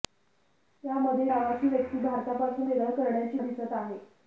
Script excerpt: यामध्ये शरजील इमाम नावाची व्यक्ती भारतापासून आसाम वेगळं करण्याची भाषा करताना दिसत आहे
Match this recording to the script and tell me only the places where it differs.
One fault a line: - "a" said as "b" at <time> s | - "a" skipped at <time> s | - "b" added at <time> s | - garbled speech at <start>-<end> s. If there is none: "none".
- "शरजील इमाम" skipped at 1.2 s
- "आसाम" skipped at 2.7 s
- "भाषा करताना" skipped at 3.4 s